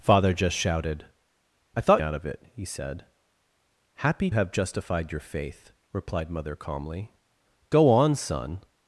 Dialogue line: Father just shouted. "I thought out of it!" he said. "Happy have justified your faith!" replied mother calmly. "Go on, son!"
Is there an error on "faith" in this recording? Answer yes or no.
no